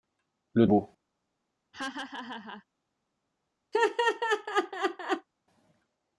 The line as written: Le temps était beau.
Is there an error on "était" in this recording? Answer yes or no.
yes